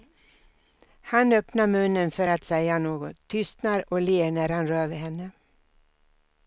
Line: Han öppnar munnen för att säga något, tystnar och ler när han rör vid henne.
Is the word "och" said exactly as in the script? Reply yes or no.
yes